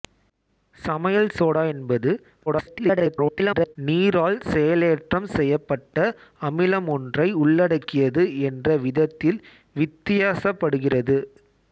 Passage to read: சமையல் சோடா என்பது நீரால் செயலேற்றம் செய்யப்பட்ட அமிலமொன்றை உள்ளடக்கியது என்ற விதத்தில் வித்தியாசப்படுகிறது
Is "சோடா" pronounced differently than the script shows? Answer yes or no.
no